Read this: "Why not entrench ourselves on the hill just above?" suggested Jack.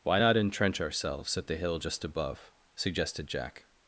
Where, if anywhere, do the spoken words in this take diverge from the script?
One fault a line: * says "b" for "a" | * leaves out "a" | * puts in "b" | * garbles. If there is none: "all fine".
* says "at" for "on"